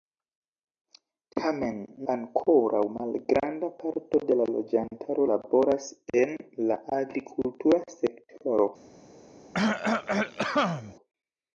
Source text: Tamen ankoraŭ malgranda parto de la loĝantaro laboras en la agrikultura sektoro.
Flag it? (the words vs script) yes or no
no